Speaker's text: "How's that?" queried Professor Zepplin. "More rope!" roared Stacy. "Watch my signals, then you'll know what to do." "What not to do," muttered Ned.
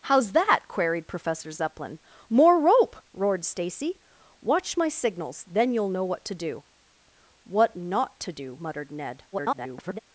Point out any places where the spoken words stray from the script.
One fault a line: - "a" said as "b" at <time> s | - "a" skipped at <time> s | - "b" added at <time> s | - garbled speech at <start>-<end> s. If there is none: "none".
- garbled speech at 9.3-10.0 s